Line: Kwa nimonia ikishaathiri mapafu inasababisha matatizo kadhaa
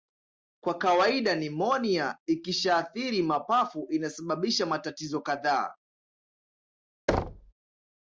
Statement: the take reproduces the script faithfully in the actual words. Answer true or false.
false